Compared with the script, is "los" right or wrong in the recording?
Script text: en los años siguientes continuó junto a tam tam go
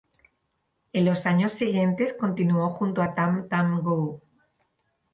right